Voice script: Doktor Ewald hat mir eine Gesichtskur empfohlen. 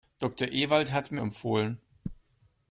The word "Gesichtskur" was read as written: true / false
false